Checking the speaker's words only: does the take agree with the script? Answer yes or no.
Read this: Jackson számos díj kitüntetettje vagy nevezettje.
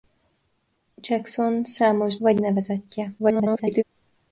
no